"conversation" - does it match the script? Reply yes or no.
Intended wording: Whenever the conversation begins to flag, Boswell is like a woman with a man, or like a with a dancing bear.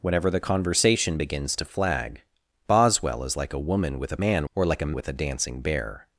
yes